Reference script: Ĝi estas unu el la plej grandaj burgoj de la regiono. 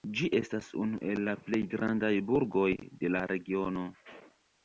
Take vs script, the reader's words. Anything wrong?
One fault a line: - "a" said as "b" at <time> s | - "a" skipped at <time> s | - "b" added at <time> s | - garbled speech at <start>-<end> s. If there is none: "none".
none